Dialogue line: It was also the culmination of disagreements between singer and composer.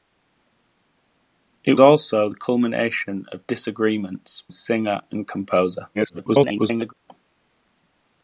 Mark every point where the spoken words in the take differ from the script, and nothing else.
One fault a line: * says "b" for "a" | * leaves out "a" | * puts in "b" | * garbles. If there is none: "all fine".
* leaves out "was"
* leaves out "between"
* garbles